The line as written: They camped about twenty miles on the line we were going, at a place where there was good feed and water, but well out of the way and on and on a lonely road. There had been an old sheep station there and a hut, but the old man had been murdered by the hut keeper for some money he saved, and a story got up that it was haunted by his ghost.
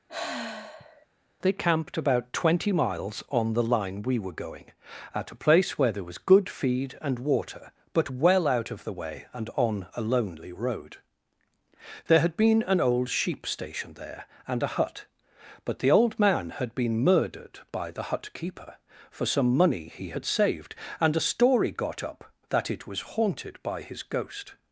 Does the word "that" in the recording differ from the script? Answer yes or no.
no